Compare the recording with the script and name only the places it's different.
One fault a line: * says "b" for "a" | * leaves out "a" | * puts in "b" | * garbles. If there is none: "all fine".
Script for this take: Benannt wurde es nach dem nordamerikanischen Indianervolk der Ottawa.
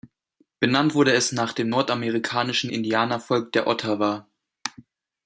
all fine